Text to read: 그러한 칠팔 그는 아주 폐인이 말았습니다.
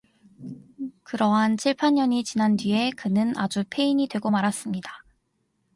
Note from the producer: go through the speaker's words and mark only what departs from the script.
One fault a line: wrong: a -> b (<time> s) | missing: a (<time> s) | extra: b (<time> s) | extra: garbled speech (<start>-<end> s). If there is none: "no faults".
extra: 년이 지난 뒤에 (1.9 s)
extra: 되고 (4.1 s)